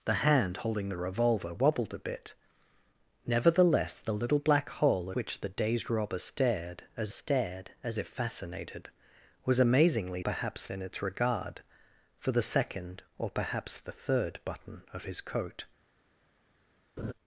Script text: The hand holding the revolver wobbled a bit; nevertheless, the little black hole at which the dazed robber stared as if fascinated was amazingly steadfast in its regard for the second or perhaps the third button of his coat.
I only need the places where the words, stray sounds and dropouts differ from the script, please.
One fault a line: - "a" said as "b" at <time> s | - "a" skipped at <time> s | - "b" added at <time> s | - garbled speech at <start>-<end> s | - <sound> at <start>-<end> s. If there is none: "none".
- "at" skipped at 5.1 s
- "stared as" added at 7.1 s
- "steadfast" said as "perhaps" at 10.2 s
- laugh at 17.0-17.1 s